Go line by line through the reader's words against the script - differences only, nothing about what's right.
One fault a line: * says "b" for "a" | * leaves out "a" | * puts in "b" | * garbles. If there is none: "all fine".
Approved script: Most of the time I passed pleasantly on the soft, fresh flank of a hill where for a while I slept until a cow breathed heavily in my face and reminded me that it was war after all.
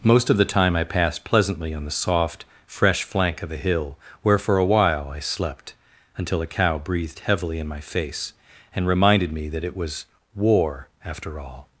all fine